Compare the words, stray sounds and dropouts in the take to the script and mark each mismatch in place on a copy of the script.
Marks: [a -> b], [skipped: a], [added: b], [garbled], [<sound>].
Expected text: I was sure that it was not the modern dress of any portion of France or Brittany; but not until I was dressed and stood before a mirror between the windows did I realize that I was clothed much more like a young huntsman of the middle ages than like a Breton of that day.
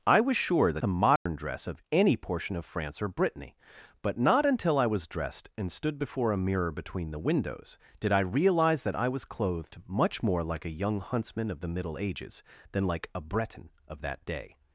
I was sure that [skipped: it was not] the modern [dropout] dress of any portion of France or Brittany; but not until I was dressed and stood before a mirror between the windows did I realize that I was clothed much more like a young huntsman of the middle ages than like a Breton of that day.